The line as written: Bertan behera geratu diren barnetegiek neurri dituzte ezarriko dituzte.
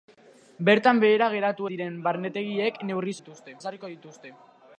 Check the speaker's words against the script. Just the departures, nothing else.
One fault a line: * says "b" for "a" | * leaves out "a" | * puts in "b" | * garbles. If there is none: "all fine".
all fine